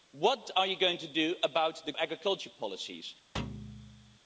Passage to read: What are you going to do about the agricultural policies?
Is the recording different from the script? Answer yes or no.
no